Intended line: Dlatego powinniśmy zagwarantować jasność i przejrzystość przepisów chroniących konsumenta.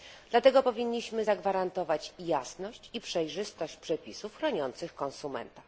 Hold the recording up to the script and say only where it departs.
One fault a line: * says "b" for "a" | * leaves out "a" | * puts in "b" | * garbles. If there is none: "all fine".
all fine